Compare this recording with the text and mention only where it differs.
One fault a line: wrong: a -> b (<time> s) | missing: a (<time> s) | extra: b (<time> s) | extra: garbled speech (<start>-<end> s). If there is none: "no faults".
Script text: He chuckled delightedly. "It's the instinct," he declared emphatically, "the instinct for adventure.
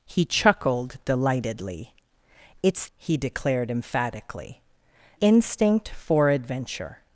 missing: the instinct (2.9 s)
missing: the (4.6 s)